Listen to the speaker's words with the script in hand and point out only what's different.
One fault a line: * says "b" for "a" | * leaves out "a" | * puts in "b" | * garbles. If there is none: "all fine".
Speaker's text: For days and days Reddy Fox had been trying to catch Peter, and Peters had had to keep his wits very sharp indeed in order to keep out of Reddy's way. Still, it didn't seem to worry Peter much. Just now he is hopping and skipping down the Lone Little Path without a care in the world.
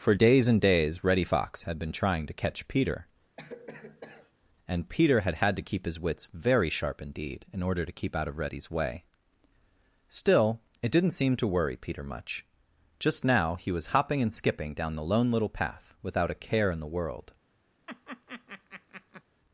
* says "Peter" for "Peters"
* says "was" for "is"